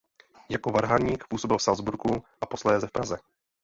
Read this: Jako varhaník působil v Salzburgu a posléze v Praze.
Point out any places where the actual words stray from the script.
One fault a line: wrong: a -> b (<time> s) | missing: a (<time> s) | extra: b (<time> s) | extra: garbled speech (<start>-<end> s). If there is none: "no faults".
no faults